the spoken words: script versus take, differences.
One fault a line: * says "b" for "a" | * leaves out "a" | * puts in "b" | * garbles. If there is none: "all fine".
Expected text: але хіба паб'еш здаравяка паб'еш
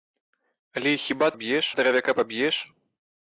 all fine